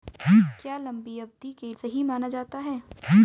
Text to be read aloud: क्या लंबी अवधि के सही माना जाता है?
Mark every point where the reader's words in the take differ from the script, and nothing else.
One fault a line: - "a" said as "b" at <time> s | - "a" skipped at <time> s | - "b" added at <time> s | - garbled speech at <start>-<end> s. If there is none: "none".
none